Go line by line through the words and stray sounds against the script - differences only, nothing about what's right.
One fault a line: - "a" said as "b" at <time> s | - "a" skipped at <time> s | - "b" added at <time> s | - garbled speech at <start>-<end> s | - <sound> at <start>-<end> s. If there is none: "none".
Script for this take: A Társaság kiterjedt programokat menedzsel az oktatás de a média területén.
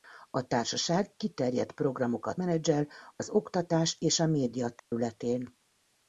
- "de" said as "és" at 4.0 s
- dropout at 4.8-4.9 s